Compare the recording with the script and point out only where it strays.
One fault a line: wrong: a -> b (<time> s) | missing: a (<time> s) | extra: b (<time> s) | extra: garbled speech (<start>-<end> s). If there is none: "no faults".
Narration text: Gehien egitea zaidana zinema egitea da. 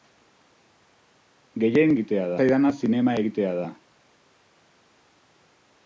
no faults